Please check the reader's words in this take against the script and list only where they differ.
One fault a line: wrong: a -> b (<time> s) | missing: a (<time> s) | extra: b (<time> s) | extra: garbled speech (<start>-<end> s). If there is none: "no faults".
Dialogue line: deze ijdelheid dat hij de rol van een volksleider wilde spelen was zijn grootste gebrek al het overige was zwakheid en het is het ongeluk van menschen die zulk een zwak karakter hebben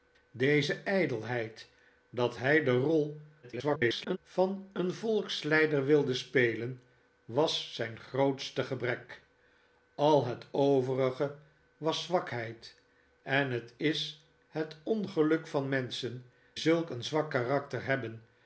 extra: garbled speech (3.4-4.2 s)
missing: die (16.2 s)